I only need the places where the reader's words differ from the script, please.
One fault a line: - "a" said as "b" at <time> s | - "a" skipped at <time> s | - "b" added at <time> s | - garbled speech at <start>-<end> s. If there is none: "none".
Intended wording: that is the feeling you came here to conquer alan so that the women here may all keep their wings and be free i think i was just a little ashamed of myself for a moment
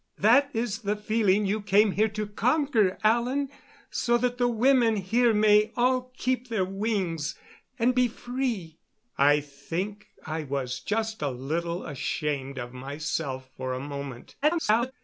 - garbled speech at 14.4-14.9 s